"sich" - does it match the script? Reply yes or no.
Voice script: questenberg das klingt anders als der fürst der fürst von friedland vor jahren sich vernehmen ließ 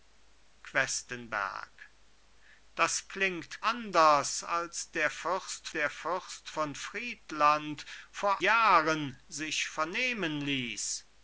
yes